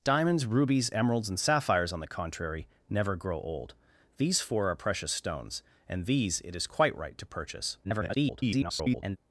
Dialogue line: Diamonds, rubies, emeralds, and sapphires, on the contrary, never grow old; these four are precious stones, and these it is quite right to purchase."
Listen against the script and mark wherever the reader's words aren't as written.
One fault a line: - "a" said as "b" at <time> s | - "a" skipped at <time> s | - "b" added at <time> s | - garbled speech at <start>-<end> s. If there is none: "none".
- garbled speech at 7.8-9.2 s